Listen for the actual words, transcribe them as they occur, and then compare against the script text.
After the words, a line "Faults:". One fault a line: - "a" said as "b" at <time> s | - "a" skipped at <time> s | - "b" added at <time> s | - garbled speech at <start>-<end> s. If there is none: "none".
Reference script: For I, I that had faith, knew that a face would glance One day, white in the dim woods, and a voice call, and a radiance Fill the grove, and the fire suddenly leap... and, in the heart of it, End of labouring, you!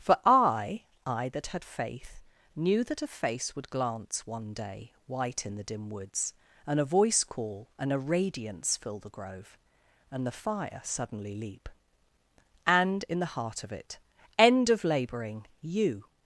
For I, I that had faith, knew that a face would glance One day, white in the dim woods, and a voice call, and a radiance Fill the grove, and the fire suddenly leap... and, in the heart of it, End of labouring, you!
Faults:
none